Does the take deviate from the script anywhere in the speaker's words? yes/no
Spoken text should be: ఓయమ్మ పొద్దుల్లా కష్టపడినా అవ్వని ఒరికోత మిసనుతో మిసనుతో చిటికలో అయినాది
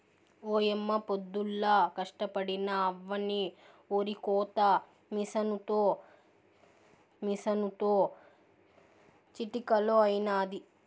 no